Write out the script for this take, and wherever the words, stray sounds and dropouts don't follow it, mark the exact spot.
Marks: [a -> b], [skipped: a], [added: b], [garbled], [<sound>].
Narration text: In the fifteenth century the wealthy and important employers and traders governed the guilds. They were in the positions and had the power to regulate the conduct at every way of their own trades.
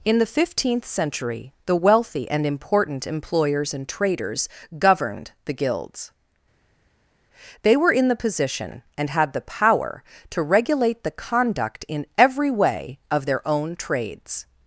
In the fifteenth century the wealthy and important employers and traders governed the guilds. They were in the [positions -> position] and had the power to regulate the conduct [at -> in] every way of their own trades.